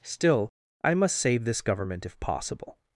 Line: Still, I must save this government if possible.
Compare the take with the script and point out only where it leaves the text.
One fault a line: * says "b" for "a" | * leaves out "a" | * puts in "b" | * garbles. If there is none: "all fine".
all fine